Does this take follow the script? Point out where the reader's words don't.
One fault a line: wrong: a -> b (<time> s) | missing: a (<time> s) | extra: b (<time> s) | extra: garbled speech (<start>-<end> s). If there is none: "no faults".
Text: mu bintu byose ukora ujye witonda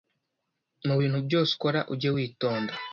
no faults